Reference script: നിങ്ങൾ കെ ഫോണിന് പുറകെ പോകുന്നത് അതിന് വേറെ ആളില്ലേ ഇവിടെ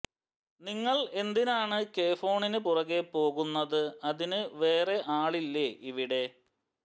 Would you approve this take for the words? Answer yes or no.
no